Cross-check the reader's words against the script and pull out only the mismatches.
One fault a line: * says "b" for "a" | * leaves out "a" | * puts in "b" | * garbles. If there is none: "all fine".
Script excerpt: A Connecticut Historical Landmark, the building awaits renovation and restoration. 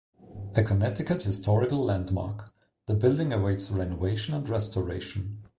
all fine